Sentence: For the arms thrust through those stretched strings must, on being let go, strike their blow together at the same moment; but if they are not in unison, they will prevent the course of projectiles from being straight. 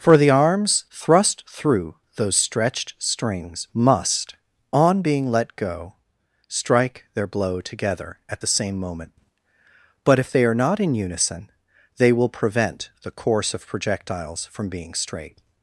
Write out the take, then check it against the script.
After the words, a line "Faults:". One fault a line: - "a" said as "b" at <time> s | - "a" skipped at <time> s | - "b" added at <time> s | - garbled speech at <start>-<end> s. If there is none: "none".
For the arms thrust through those stretched strings must, on being let go, strike their blow together at the same moment; but if they are not in unison, they will prevent the course of projectiles from being straight.
Faults:
none